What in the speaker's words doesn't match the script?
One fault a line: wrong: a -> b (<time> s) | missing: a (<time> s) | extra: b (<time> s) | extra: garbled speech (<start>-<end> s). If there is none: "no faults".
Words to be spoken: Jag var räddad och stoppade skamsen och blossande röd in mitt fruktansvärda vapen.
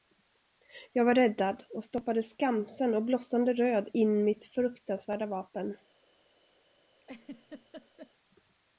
no faults